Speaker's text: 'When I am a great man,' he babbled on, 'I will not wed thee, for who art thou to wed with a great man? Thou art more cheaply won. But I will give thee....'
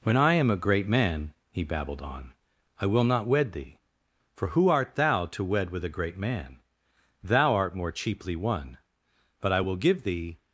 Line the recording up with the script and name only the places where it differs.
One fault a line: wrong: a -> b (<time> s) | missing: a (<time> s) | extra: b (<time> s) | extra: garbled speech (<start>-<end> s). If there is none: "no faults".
no faults